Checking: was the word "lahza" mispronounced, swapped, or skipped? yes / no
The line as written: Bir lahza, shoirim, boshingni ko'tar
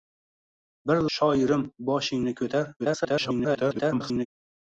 yes